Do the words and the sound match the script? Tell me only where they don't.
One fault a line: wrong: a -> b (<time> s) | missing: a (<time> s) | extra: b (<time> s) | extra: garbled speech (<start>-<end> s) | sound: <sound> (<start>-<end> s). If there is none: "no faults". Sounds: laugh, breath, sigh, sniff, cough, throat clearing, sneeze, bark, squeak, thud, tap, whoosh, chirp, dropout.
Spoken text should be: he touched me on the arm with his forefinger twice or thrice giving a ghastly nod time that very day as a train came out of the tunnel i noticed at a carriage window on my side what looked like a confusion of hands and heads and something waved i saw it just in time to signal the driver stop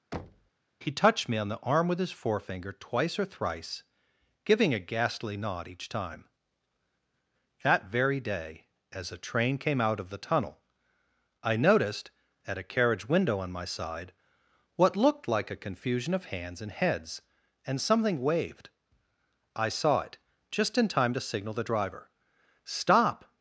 sound: thud (0.1-0.5 s)
extra: each (5.7 s)